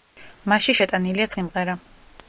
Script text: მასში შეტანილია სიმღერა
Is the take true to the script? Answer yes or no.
yes